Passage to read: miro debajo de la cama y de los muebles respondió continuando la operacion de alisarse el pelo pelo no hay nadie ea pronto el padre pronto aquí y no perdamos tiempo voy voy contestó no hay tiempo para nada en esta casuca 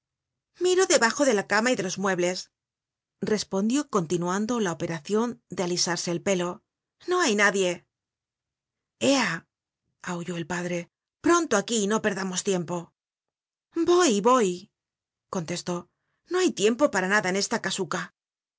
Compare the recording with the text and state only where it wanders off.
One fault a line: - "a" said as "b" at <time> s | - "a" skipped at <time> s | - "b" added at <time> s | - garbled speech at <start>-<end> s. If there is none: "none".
- "pelo" skipped at 6.6 s
- "pronto" said as "aulló" at 10.0 s